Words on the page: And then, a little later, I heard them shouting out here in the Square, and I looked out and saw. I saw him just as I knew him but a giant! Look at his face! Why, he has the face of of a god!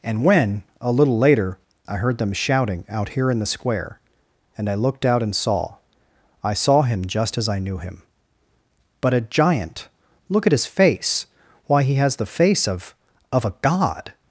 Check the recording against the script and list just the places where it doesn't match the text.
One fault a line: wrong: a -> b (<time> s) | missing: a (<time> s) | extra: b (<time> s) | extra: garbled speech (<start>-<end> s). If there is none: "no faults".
wrong: then -> when (0.2 s)